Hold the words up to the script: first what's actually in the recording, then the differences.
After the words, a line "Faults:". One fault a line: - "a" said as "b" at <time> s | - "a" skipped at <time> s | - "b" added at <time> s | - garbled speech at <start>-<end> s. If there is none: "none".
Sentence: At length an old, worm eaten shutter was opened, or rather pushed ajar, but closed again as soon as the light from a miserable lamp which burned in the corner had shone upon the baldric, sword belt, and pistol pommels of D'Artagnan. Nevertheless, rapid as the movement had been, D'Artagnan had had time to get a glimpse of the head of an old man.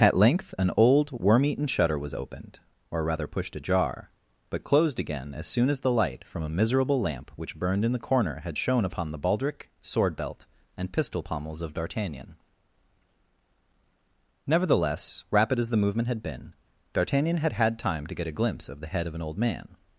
At length an old, worm eaten shutter was opened, or rather pushed ajar, but closed again as soon as the light from a miserable lamp which burned in the corner had shone upon the baldric, sword belt, and pistol pommels of D'Artagnan. Nevertheless, rapid as the movement had been, D'Artagnan had had time to get a glimpse of the head of an old man.
Faults:
none